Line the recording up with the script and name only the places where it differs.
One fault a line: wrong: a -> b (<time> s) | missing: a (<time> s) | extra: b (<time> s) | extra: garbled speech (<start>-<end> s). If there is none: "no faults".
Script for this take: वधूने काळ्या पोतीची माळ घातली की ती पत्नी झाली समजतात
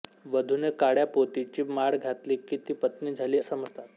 no faults